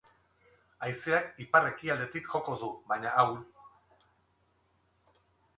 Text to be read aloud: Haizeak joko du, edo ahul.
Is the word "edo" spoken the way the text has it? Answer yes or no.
no